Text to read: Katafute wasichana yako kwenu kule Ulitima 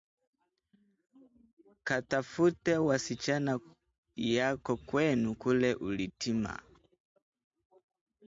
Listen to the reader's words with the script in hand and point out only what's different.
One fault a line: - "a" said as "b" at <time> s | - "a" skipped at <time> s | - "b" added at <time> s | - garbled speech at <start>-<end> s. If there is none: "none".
none